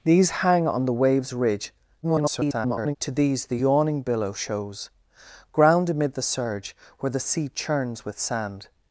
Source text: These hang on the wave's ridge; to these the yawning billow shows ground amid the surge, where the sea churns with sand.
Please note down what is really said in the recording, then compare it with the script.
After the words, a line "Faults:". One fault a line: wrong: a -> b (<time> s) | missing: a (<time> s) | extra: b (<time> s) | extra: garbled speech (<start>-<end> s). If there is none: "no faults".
These hang on the wave's ridge; [garbled] to these the yawning billow shows ground amid the surge, where the sea churns with sand.
Faults:
extra: garbled speech (2.0-3.0 s)